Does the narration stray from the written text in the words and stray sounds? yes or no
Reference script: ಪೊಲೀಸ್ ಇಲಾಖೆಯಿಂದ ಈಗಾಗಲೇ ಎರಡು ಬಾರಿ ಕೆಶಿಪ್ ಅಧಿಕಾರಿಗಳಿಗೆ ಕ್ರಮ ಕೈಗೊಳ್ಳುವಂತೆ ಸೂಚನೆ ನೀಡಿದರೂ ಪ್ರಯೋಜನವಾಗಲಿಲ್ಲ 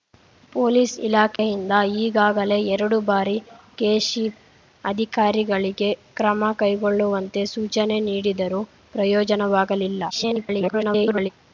yes